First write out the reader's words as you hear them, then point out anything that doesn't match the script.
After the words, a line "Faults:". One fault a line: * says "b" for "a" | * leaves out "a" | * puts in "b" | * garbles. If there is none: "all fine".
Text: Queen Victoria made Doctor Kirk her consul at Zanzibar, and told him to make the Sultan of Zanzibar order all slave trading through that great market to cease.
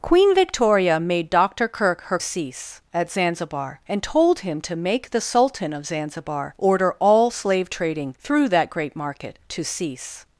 Queen Victoria made Doctor Kirk her cease at Zanzibar, and told him to make the Sultan of Zanzibar order all slave trading through that great market to cease.
Faults:
* says "cease" for "consul"